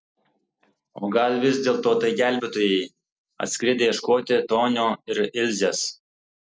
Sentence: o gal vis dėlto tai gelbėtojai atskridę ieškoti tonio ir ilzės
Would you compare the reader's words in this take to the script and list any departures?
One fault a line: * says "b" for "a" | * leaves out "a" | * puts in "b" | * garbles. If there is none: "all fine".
all fine